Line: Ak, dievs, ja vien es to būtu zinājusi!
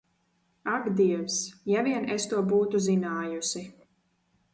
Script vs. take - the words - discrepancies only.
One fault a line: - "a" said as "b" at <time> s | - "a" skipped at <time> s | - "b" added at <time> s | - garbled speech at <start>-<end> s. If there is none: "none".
none